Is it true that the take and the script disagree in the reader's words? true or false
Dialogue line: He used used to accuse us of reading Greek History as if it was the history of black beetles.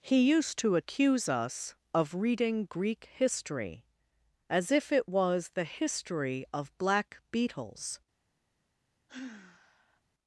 true